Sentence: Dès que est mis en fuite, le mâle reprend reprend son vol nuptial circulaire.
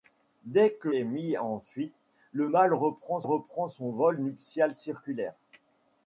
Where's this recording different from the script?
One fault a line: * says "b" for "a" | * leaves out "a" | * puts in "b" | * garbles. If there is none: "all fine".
all fine